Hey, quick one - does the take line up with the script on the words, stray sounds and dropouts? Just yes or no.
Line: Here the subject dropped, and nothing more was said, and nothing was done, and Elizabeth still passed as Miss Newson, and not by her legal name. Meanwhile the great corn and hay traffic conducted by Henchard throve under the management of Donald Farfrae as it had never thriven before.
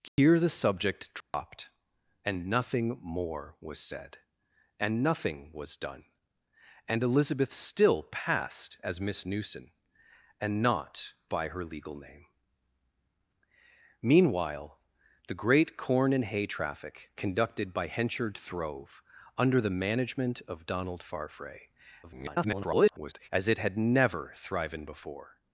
no